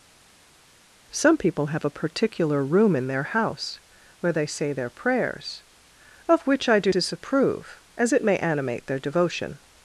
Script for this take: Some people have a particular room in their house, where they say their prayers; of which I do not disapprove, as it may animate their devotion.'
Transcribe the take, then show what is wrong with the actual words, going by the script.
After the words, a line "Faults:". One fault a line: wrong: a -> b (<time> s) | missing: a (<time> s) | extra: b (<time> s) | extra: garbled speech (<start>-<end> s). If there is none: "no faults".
Some people have a particular room in their house, where they say their prayers; of which I do disapprove, as it may animate their devotion.'
Faults:
missing: not (6.9 s)